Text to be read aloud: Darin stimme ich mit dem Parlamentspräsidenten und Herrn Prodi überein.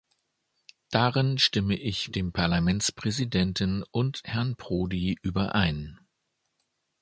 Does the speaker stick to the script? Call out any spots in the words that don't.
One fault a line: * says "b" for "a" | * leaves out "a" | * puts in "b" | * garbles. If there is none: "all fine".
* leaves out "mit"